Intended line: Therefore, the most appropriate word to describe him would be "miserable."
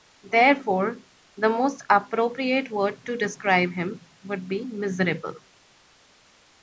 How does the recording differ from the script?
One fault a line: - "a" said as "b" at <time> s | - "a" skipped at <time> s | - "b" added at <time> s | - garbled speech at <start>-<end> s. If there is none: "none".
none